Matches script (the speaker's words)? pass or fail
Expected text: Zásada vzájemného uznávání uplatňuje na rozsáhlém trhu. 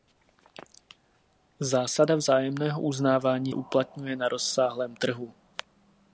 pass